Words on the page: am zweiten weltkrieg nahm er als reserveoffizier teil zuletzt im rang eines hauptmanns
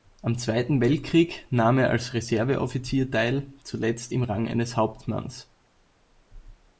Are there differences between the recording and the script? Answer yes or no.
no